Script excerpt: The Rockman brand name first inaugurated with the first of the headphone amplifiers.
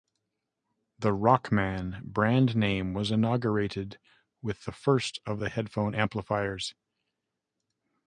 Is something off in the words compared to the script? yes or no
yes